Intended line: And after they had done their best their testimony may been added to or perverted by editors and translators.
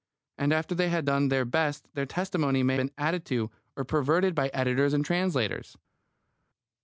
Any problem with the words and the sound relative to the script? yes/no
no